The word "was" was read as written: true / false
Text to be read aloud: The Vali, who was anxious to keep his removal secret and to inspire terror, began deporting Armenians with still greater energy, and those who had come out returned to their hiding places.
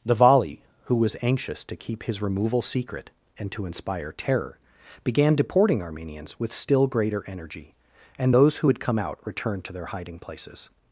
true